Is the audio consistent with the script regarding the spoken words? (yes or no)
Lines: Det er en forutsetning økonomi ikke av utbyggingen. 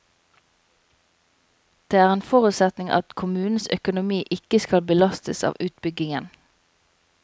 no